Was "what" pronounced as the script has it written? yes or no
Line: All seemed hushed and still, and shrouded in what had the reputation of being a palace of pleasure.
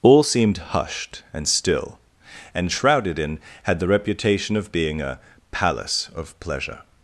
no